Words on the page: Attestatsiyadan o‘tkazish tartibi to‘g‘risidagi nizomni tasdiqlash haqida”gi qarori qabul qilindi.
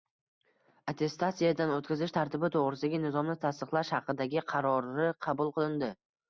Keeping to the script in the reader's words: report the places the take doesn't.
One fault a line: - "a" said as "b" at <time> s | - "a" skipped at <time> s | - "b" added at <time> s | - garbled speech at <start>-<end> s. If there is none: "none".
none